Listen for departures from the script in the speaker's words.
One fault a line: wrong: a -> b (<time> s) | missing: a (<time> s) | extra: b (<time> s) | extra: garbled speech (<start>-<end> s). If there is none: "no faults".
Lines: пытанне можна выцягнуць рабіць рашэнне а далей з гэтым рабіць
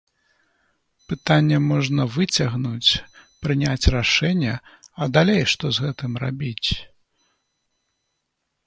wrong: рабіць -> прыняць (3.5 s)
extra: што (5.5 s)